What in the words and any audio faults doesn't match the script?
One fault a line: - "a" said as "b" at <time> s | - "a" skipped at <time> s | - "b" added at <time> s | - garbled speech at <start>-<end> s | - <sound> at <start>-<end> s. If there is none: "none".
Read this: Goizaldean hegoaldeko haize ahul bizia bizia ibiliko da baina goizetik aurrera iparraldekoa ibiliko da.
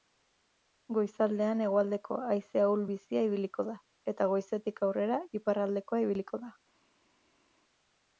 - "bizia" skipped at 3.3 s
- "baina" said as "eta" at 4.2 s